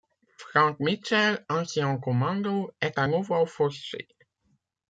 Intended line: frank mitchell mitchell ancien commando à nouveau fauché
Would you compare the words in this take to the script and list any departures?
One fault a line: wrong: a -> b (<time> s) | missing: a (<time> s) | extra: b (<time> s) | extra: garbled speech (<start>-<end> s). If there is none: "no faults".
missing: mitchell (1.4 s)
extra: est (2.8 s)